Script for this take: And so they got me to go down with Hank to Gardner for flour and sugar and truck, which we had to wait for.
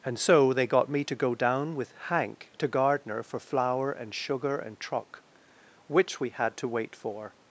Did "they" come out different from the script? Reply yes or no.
no